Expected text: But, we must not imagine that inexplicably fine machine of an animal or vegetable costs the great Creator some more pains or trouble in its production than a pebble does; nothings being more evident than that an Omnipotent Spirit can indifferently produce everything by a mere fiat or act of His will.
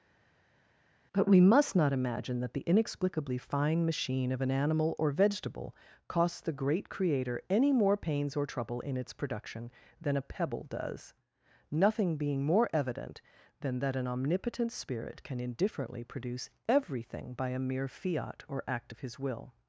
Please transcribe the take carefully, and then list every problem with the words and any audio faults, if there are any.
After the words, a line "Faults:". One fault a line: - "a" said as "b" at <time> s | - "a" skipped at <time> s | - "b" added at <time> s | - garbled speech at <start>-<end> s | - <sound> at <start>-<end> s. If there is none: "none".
But, we must not imagine that the inexplicably fine machine of an animal or vegetable costs the great Creator any more pains or trouble in its production than a pebble does; nothing being more evident than that an Omnipotent Spirit can indifferently produce everything by a mere fiat or act of His will.
Faults:
- "the" added at 2.5 s
- "some" said as "any" at 7.5 s
- "nothings" said as "nothing" at 11.7 s